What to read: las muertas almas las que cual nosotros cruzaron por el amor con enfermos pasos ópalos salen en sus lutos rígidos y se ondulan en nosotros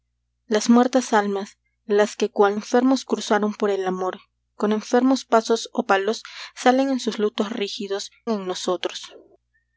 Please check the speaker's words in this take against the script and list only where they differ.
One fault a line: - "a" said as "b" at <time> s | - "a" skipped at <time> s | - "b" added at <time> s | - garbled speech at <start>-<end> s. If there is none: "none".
- "nosotros" said as "enfermos" at 2.5 s
- "y se ondulan" skipped at 8.1 s